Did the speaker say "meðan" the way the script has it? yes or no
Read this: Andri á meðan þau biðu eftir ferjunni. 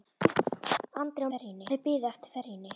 no